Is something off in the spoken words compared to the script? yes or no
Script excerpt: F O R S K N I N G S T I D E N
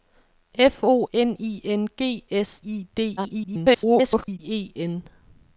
yes